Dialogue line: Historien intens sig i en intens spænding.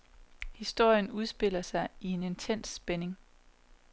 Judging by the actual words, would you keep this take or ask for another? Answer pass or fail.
fail